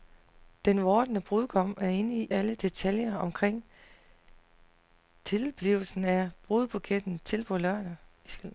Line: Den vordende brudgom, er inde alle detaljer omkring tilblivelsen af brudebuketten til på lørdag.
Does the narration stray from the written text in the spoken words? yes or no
no